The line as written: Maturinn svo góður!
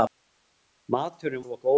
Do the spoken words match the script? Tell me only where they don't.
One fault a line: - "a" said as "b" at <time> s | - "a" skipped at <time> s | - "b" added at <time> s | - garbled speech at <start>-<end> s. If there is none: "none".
none